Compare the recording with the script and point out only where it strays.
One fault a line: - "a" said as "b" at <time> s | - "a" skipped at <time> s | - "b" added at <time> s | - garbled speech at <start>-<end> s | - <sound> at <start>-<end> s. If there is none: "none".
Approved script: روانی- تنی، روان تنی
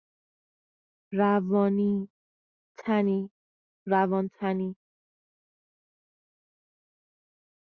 none